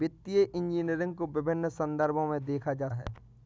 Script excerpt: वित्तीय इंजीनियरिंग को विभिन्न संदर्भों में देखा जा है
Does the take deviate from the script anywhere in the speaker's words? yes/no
no